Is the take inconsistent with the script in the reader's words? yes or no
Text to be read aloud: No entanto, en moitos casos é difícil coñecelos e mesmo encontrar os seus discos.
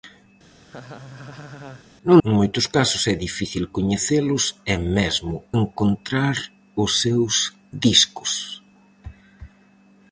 yes